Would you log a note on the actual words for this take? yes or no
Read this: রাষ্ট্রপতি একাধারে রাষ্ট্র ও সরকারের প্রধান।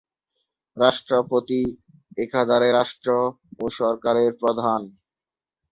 no